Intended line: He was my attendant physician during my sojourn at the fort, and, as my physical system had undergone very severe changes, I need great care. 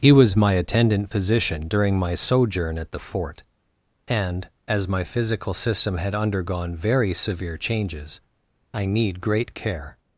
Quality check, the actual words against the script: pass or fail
pass